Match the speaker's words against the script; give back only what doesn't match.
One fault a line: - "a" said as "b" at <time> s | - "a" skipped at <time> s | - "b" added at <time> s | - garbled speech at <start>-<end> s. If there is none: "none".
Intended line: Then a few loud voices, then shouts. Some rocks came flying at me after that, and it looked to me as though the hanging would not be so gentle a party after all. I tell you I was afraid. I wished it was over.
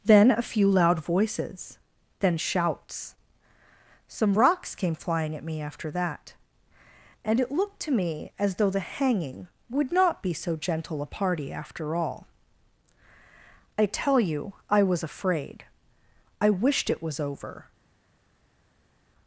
none